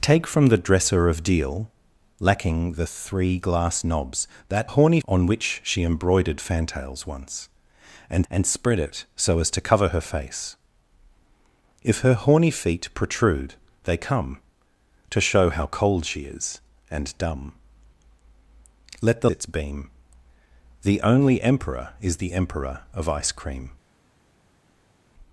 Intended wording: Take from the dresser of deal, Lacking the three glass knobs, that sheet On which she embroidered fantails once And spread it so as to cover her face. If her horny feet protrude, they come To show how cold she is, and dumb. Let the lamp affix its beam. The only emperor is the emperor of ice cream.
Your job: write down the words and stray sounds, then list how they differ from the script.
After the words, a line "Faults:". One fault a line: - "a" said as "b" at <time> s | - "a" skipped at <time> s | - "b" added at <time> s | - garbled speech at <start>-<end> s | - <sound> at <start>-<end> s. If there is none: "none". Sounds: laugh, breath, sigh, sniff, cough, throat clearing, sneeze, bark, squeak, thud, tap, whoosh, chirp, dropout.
Take from the dresser of deal, Lacking the three glass knobs, that horny On which she embroidered fantails once And And spread it so as to cover her face. If her horny feet protrude, they come To show how cold she is, and dumb. Let the its beam. The only emperor is the emperor of ice cream.
Faults:
- "sheet" said as "horny" at 4.6 s
- "And" added at 8.3 s
- "lamp affix" skipped at 19.3 s